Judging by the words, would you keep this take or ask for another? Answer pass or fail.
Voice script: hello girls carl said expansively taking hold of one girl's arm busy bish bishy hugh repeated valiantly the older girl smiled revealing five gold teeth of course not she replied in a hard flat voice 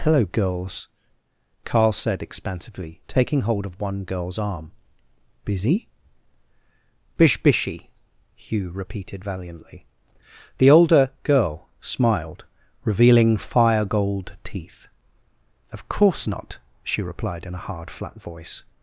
fail